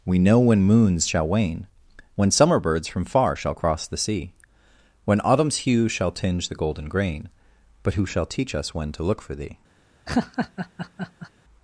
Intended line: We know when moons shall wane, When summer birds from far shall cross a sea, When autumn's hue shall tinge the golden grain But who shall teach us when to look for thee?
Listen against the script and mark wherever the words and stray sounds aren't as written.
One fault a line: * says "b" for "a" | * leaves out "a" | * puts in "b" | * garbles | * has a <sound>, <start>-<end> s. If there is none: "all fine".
* says "the" for "a"
* has a laugh, 10.1-11.3 s